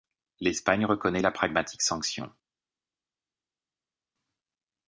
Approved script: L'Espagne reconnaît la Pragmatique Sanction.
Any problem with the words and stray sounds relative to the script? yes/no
no